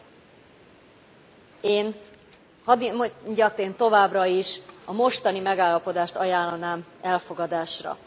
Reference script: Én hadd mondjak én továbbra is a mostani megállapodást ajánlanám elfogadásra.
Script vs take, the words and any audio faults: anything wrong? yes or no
no